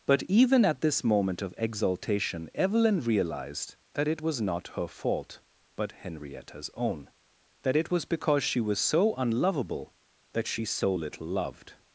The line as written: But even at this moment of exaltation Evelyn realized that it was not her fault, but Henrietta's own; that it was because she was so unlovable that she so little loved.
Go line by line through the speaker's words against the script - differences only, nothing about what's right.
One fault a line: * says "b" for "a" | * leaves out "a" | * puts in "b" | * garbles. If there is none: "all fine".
all fine